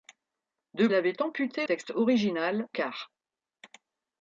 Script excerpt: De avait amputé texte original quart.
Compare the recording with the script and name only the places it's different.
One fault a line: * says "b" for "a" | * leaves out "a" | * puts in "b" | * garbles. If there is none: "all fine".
all fine